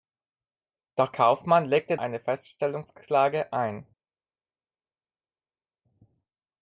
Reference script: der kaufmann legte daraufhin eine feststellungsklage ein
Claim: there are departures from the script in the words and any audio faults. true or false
true